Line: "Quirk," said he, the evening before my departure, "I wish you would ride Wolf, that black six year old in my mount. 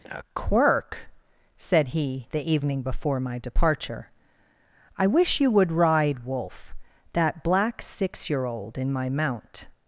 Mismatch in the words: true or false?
true